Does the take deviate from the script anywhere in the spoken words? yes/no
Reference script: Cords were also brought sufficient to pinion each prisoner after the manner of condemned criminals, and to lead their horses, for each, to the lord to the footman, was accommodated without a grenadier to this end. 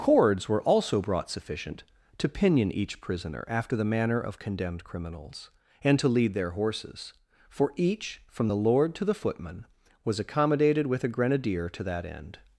yes